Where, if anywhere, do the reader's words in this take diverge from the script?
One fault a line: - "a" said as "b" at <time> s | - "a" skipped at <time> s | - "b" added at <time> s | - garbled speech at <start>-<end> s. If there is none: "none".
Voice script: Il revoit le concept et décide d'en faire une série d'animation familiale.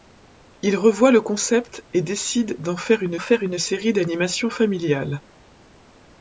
- "faire une" added at 3.2 s